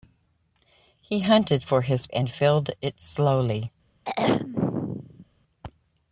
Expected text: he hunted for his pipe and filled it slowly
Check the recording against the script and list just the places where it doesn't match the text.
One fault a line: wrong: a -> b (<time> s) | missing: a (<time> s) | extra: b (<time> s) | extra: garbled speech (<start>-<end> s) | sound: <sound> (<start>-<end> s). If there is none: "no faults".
missing: pipe (2.1 s)
sound: throat clearing (4.1-5.3 s)